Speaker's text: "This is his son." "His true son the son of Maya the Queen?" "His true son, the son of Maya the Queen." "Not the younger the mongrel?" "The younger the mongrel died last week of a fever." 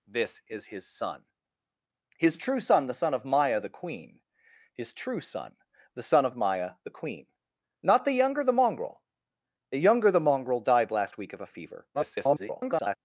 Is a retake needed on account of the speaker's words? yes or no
yes